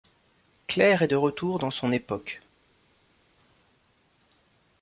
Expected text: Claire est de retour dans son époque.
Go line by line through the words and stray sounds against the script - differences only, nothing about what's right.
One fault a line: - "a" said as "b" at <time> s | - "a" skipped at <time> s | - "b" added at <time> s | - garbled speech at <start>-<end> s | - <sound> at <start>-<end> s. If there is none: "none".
none